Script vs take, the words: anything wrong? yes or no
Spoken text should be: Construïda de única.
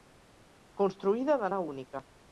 yes